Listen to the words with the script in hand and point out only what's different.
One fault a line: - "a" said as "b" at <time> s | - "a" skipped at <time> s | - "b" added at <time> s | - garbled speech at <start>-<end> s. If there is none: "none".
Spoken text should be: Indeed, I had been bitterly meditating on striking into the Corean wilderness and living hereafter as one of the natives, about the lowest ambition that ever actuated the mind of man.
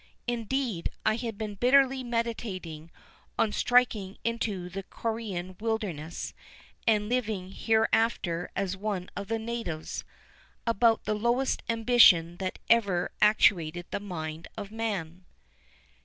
none